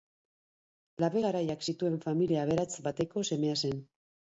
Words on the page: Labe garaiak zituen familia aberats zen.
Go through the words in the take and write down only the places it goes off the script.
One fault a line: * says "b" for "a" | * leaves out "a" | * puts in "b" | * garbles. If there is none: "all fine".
* puts in "bateko semea"